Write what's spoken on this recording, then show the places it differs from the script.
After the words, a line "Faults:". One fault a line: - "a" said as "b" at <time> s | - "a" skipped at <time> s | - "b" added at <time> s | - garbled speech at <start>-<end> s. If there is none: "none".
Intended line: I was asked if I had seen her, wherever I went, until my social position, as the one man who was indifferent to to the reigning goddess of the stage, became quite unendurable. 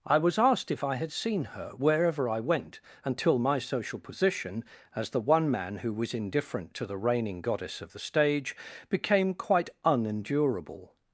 I was asked if I had seen her, wherever I went, until my social position, as the one man who was indifferent to the reigning goddess of the stage, became quite unendurable.
Faults:
- "to" skipped at 6.9 s